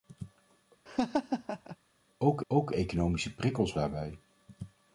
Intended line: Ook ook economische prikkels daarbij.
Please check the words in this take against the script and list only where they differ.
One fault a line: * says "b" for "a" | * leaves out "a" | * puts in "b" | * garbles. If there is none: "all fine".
all fine